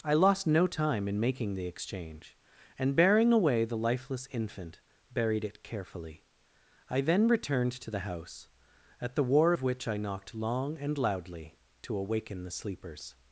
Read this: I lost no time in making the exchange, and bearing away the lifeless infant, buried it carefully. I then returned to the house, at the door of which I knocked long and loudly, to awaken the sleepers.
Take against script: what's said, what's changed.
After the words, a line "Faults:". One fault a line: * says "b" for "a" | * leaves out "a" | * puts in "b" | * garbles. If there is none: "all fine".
I lost no time in making the exchange, and bearing away the lifeless infant, buried it carefully. I then returned to the house, at the war of which I knocked long and loudly, to awaken the sleepers.
Faults:
* says "war" for "door"